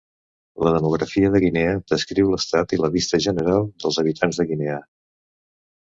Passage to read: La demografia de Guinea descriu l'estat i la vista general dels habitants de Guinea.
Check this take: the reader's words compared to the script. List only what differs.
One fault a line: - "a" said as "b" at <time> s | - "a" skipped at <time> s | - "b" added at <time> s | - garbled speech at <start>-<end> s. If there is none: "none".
none